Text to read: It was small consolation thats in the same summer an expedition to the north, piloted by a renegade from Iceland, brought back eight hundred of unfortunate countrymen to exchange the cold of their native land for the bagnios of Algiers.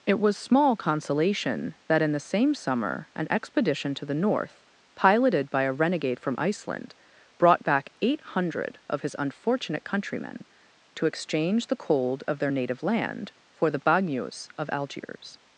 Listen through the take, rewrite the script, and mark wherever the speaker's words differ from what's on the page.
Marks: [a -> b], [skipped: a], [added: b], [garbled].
It was small consolation [thats -> that] in the same summer an expedition to the north, piloted by a renegade from Iceland, brought back eight hundred of [added: his] unfortunate countrymen to exchange the cold of their native land for the bagnios of Algiers.